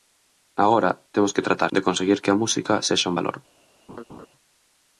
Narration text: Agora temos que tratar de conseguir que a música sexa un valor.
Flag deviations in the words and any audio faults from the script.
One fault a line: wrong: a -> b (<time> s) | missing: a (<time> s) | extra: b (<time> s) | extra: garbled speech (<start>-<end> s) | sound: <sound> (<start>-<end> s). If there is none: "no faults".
sound: laugh (3.9-4.3 s)